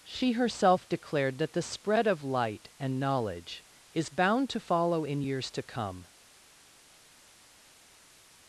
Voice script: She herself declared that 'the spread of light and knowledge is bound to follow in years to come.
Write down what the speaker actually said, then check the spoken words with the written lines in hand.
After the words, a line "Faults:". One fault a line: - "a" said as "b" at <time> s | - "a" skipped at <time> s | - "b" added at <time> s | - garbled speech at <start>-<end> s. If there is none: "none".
She herself declared that 'the spread of light and knowledge is bound to follow in years to come.
Faults:
none